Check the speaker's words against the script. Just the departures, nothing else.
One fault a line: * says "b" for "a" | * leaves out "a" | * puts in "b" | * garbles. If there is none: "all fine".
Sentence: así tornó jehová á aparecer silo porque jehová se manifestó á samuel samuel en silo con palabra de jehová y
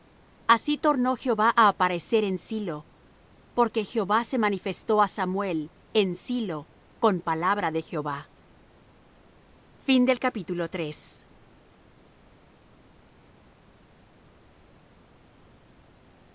* puts in "en"
* leaves out "samuel"